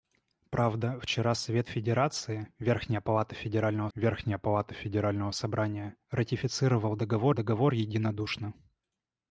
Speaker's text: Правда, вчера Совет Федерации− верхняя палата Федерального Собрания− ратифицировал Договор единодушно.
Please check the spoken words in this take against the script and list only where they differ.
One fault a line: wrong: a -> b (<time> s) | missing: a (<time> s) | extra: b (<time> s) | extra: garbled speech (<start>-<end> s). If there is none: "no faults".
extra: верхняя палата Федерального (3.9 s)
extra: Договор (7.3 s)